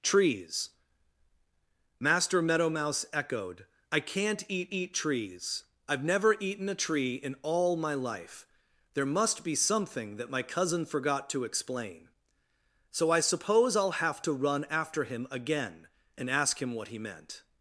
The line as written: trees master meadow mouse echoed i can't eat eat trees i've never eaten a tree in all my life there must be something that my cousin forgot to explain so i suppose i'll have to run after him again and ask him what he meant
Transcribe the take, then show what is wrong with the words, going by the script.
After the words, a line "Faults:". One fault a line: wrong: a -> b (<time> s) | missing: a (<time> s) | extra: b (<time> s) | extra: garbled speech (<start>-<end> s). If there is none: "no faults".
trees master meadow mouse echoed i can't eat eat trees i've never eaten a tree in all my life there must be something that my cousin forgot to explain so i suppose i'll have to run after him again and ask him what he meant
Faults:
no faults